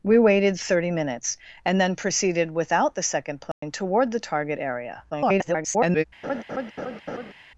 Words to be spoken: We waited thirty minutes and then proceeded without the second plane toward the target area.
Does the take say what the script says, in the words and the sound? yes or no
no